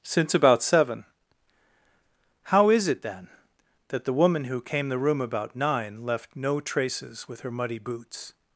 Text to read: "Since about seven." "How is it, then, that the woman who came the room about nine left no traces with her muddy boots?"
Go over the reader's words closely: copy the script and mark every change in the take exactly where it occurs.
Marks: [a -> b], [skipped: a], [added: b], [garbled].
"Since about seven." "How is it, then, that the woman who came the room about nine left no traces with her muddy boots?"